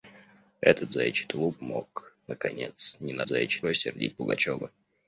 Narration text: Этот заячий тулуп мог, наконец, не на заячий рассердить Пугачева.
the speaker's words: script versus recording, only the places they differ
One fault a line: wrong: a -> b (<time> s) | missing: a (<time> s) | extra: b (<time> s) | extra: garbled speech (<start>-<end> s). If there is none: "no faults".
no faults